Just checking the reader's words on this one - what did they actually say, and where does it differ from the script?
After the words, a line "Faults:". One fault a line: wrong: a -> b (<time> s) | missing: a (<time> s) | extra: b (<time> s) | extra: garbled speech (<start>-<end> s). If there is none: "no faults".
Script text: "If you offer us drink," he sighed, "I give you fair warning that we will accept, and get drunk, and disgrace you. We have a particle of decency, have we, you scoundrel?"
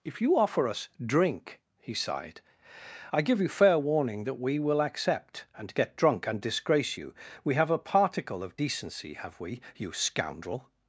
"If you offer us drink," he sighed, "I give you fair warning that we will accept, and get drunk, and disgrace you. We have a particle of decency, have we, you scoundrel?"
Faults:
no faults